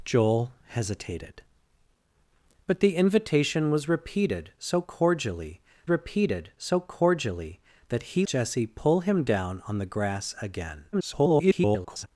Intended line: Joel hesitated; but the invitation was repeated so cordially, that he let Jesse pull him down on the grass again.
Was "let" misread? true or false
true